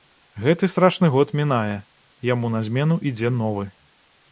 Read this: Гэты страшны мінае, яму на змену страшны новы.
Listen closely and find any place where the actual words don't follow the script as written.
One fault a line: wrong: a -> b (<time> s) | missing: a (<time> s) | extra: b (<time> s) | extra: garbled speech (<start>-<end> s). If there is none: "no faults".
extra: год (1.2 s)
wrong: страшны -> ідзе (3.1 s)